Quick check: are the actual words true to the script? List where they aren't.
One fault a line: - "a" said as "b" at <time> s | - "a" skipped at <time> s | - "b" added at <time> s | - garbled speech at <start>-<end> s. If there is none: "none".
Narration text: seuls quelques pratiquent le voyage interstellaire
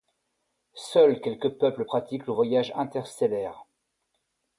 - "peuples" added at 1.6 s